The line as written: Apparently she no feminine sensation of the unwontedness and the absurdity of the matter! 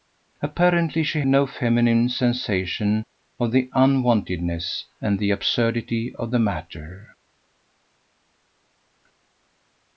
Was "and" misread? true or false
false